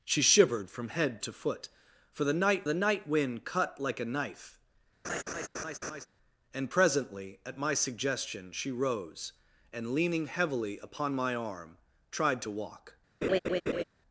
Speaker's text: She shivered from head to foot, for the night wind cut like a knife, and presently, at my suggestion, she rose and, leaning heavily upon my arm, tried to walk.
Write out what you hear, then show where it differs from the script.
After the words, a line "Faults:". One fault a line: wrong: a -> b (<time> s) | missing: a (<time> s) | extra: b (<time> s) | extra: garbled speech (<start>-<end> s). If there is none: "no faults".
She shivered from head to foot, for the night the night wind cut like a knife, and presently, at my suggestion, she rose and, leaning heavily upon my arm, tried to walk.
Faults:
extra: the night (2.6 s)